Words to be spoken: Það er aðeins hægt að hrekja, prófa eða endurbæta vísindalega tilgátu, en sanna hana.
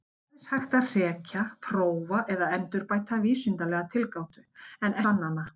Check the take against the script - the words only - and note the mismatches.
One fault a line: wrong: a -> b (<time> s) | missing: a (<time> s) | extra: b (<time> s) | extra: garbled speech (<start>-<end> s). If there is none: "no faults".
no faults